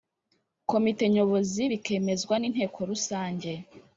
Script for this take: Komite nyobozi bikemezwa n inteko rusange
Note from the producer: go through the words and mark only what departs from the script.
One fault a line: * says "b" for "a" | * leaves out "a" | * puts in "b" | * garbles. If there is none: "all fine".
all fine